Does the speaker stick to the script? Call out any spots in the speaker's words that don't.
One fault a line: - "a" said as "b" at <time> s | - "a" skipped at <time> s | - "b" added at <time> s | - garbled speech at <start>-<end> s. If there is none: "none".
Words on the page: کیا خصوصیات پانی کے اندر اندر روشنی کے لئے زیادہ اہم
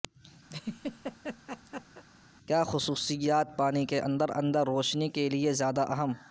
none